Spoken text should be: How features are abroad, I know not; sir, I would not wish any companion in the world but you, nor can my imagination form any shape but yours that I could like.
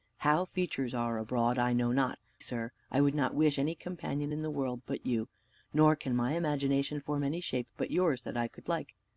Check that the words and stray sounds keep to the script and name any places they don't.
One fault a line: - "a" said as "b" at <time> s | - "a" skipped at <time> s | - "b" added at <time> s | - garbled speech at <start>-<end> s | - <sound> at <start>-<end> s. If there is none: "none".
none